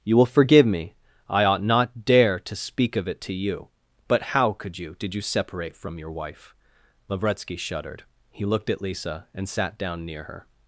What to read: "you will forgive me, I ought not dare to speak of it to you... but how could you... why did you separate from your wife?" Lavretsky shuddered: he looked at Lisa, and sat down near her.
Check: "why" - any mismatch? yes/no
yes